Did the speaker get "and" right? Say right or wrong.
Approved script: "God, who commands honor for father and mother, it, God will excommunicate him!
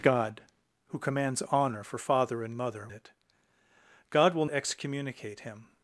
right